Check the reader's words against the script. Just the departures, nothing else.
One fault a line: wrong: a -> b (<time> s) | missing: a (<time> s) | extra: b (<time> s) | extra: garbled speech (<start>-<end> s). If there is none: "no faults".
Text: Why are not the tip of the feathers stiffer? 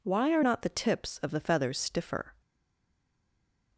wrong: tip -> tips (0.7 s)